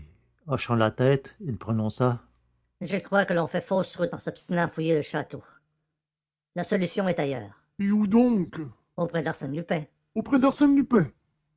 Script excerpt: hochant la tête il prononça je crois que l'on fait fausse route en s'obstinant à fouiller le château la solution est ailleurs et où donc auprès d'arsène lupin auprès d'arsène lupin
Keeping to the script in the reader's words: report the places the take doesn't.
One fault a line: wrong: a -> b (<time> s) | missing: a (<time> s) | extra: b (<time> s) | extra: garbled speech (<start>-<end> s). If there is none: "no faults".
no faults